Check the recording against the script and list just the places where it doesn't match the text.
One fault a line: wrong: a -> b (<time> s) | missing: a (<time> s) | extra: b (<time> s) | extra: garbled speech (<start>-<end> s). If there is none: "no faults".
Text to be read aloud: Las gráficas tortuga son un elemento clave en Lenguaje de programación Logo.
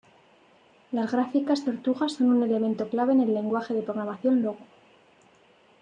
extra: el (3.2 s)